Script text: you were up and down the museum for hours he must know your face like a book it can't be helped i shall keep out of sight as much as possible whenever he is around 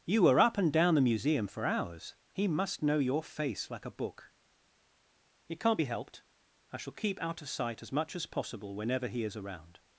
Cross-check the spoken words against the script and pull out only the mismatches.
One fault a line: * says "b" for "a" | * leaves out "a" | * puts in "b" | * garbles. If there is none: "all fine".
all fine